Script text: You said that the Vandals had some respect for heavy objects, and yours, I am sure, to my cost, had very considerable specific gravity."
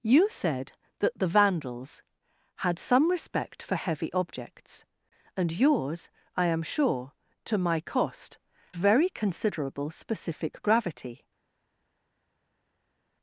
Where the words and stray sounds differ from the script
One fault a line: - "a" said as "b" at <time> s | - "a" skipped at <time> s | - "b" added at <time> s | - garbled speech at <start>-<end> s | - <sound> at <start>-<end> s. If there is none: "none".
- "had" skipped at 8.4 s